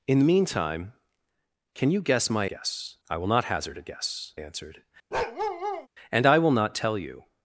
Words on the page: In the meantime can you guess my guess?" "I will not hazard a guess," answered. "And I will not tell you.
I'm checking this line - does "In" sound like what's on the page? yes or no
yes